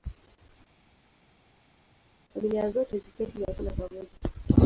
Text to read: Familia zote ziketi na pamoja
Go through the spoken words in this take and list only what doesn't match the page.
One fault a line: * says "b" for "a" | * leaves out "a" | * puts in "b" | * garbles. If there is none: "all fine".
* puts in "kula"